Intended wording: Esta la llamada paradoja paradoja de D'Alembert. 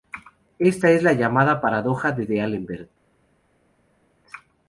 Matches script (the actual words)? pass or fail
fail